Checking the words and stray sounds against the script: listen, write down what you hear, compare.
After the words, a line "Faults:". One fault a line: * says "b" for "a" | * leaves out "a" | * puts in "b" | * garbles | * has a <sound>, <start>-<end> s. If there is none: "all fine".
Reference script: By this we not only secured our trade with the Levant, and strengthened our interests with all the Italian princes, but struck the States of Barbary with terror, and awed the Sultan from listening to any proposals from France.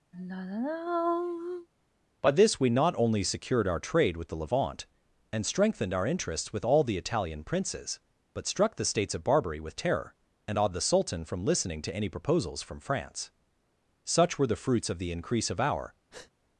By this we not only secured our trade with the Levant, and strengthened our interests with all the Italian princes, but struck the States of Barbary with terror, and awed the Sultan from listening to any proposals from France. Such were the fruits of the increase of our
Faults:
* has a sigh, 0.1-1.7 s
* puts in "Such were the fruits of the increase of our"
* has a breath, 16.1-16.3 s